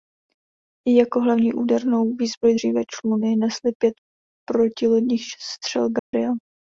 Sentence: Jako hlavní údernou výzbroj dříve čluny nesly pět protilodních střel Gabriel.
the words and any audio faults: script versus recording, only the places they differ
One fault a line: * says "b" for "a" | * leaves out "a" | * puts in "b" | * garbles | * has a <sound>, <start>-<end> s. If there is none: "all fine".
* has a dropout, 6.0-6.1 s